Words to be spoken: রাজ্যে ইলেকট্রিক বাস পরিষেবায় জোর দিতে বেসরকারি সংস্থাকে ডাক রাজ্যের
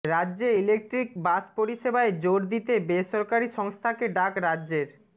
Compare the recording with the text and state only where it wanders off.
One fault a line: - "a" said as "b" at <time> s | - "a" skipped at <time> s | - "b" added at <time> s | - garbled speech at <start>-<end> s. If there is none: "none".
none